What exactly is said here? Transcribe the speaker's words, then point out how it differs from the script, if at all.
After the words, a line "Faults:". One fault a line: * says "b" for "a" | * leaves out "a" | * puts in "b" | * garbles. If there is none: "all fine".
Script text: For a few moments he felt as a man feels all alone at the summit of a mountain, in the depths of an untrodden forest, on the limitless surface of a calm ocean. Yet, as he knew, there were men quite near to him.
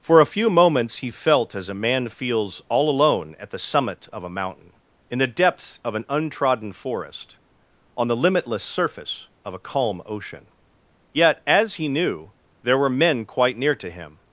For a few moments he felt as a man feels all alone at the summit of a mountain, in the depths of an untrodden forest, on the limitless surface of a calm ocean. Yet, as he knew, there were men quite near to him.
Faults:
all fine